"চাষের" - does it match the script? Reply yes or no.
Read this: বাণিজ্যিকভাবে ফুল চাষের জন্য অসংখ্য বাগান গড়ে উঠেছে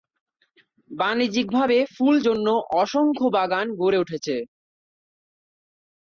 no